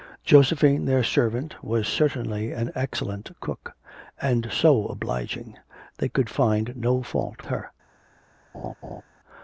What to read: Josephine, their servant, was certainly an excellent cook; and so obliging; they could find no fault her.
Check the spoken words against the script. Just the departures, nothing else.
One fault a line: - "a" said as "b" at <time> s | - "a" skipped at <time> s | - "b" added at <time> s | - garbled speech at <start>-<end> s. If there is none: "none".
none